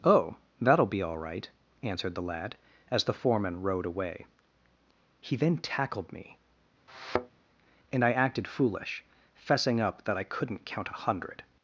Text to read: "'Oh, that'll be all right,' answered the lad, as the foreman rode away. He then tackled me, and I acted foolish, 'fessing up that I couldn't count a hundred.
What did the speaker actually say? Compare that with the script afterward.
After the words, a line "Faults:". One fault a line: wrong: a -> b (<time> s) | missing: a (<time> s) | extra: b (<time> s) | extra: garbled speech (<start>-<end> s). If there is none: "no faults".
"'Oh, that'll be all right,' answered the lad, as the foreman rode away. He then tackled me, and I acted foolish, 'fessing up that I couldn't count a hundred.
Faults:
no faults